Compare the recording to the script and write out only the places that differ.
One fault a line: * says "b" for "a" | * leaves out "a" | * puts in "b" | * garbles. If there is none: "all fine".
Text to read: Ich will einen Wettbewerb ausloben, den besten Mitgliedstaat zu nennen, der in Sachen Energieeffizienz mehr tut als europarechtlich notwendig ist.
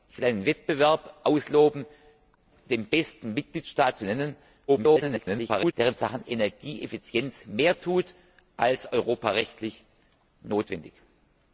* garbles